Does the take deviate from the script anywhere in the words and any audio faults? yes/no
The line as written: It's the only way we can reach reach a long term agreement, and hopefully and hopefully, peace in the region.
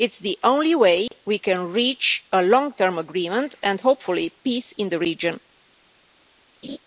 yes